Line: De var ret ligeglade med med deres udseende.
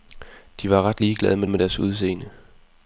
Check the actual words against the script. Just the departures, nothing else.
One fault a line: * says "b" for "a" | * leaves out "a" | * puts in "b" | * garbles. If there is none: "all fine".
all fine